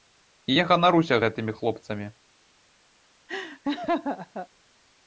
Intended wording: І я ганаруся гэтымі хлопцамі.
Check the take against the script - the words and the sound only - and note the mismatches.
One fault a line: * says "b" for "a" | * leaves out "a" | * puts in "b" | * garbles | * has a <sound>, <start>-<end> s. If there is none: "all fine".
* has a laugh, 3.3-4.5 s